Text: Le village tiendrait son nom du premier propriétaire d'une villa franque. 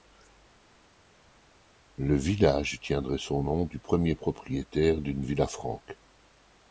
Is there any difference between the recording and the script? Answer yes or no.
no